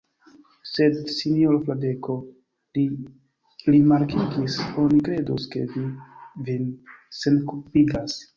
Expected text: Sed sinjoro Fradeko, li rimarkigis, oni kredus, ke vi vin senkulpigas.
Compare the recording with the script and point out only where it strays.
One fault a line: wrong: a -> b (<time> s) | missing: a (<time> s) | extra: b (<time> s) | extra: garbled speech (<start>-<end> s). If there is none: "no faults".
no faults